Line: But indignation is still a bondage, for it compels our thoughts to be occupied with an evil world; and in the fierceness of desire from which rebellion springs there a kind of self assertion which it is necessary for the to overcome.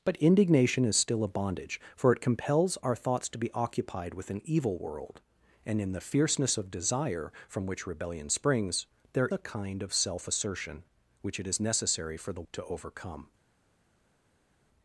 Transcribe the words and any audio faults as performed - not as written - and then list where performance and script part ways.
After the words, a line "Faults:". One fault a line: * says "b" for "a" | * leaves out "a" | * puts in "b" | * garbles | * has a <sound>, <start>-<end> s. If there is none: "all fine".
But indignation is still a bondage, for it compels our thoughts to be occupied with an evil world; and in the fierceness of desire from which rebellion springs there a kind of self assertion which it is necessary for the to overcome.
Faults:
all fine